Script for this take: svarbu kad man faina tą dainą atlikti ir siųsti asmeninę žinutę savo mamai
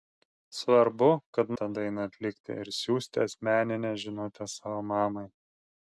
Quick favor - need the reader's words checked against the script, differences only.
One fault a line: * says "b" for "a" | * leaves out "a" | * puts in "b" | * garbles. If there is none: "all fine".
* leaves out "man faina"